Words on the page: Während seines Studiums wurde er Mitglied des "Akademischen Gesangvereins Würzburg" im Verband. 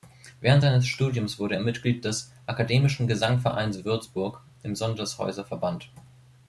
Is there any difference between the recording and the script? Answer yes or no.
yes